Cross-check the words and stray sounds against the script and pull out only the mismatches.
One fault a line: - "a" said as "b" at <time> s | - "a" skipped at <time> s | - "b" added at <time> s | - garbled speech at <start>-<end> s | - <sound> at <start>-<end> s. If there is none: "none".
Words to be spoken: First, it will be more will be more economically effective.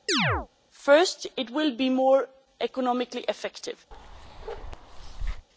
- chirp at 0.1-0.5 s
- "will be more" skipped at 2.3 s
- bark at 3.9-5.5 s